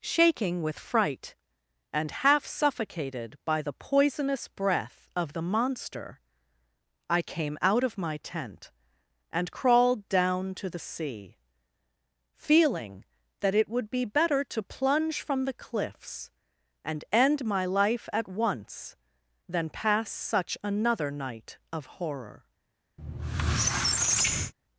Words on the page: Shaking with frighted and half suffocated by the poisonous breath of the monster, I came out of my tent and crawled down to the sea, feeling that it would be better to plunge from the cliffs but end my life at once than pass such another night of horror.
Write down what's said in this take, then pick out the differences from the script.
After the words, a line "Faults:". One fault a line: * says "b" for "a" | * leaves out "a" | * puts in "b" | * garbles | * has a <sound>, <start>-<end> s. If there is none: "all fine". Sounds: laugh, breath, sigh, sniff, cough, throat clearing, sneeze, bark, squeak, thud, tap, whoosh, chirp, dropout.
Shaking with fright and half suffocated by the poisonous breath of the monster, I came out of my tent and crawled down to the sea, feeling that it would be better to plunge from the cliffs and end my life at once than pass such another night of horror.
Faults:
* says "fright" for "frighted"
* says "and" for "but"
* has a squeak, 23.0-24.5 s